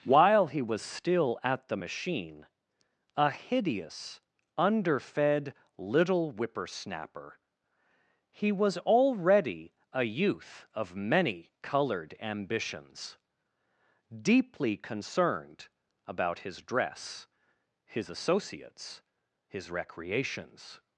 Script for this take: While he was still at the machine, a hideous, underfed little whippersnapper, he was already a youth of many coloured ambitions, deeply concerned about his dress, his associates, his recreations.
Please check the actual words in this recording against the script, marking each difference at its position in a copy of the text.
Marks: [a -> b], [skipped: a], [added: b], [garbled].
While he was still at the machine, a hideous, underfed little whippersnapper, he was already a youth of many coloured ambitions, deeply concerned about his dress, his associates, his recreations.